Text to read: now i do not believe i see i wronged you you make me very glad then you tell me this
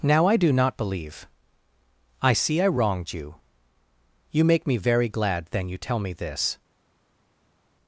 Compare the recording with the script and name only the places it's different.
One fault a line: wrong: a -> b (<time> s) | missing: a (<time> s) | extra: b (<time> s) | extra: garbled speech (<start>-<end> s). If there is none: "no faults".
no faults